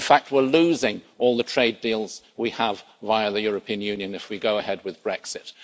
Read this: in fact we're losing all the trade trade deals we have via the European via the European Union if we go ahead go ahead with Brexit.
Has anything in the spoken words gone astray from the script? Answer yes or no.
yes